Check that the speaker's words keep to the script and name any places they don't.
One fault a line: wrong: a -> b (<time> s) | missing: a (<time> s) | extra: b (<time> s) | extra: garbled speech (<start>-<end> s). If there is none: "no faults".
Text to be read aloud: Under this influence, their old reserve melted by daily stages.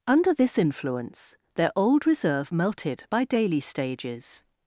no faults